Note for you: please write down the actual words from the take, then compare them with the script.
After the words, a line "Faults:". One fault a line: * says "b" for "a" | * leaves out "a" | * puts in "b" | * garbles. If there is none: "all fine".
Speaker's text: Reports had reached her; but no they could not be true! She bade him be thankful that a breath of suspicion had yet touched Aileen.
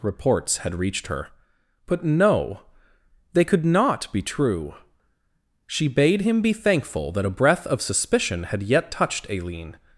Reports had reached her; but no they could not be true! She bade him be thankful that a breath of suspicion had yet touched Aileen.
Faults:
all fine